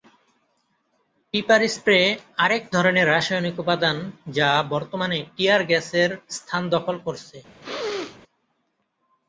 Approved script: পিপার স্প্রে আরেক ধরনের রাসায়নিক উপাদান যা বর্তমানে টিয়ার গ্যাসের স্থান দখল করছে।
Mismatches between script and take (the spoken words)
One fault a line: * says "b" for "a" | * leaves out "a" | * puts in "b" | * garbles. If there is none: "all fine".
all fine